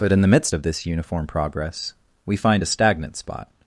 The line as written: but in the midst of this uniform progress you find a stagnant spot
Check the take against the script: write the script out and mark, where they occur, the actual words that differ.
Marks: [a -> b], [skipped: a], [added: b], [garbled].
but in the midst of this uniform progress [you -> we] find a stagnant spot